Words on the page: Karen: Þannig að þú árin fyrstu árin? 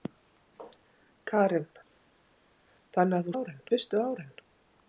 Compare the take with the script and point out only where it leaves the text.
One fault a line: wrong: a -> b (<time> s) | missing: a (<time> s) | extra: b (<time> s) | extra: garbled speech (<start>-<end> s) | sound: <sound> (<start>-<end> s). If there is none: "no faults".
no faults